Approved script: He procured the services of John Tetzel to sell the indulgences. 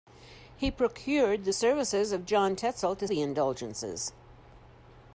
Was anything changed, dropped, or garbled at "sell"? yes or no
yes